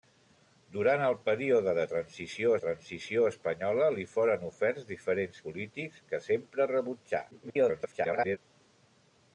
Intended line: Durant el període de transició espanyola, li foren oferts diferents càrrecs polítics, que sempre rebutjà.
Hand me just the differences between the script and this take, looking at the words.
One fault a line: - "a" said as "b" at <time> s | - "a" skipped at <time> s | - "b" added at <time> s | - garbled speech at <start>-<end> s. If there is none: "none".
- "transició" added at 2.6 s
- "càrrecs" skipped at 5.4 s
- garbled speech at 7.3-8.4 s